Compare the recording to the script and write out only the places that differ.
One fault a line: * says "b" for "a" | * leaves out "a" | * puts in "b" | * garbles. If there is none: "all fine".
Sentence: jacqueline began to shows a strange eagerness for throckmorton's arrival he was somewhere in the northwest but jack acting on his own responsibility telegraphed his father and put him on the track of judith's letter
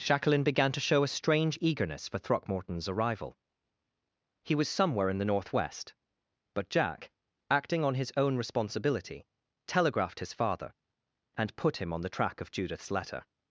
* says "show" for "shows"